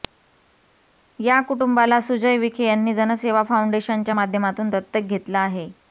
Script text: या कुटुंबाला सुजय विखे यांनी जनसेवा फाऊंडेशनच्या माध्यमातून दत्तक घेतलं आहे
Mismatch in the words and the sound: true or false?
false